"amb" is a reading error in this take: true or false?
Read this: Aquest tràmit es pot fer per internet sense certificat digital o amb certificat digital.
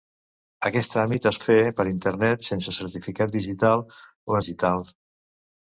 true